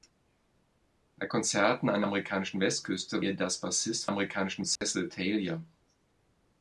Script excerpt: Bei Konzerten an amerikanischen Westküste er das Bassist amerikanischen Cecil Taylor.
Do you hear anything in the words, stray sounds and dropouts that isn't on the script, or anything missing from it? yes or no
yes